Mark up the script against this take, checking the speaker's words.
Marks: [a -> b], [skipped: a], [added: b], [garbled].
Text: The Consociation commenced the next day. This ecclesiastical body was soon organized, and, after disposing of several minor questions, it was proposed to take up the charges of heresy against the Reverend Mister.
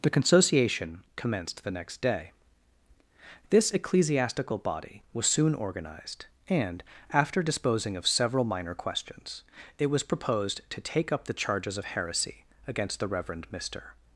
The Consociation commenced the next day. This ecclesiastical body was soon organized, and, after disposing of several minor questions, it was proposed to take up the charges of heresy against the Reverend Mister.